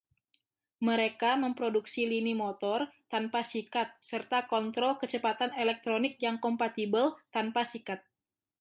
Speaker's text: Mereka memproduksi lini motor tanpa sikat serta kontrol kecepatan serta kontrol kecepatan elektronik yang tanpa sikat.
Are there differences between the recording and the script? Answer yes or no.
yes